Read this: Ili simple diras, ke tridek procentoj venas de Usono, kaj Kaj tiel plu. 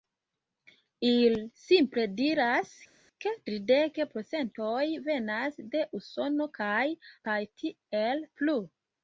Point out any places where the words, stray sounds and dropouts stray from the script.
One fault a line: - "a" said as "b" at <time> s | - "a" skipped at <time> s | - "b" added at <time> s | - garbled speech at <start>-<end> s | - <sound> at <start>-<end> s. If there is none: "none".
none